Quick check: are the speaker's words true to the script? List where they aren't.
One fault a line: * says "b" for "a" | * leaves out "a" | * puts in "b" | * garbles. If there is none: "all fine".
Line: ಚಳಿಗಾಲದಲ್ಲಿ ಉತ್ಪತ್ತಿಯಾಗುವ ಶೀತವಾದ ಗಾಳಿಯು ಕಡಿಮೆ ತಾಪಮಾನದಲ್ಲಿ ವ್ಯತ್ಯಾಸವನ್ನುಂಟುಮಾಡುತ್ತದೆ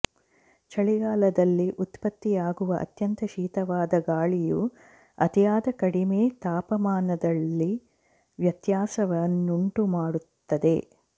* puts in "ಅತ್ಯಂತ"
* puts in "ಅತಿಯಾದ"